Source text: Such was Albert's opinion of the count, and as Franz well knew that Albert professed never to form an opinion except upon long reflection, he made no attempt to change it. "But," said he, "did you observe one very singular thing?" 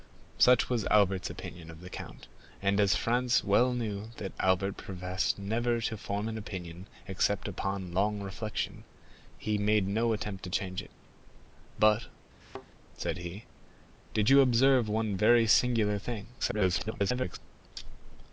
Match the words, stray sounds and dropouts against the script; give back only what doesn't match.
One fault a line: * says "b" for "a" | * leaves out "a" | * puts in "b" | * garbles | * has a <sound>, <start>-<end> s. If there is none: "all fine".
* has a thud, 12.4-12.7 s
* garbles